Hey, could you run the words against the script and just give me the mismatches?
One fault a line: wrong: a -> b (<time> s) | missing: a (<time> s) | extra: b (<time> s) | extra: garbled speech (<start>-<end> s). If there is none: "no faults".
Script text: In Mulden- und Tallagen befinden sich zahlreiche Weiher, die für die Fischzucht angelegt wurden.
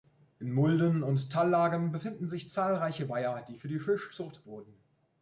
missing: angelegt (4.5 s)